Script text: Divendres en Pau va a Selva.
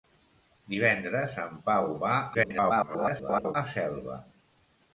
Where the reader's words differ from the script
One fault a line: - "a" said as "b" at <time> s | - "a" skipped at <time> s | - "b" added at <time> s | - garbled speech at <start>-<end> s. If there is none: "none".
- garbled speech at 2.3-3.5 s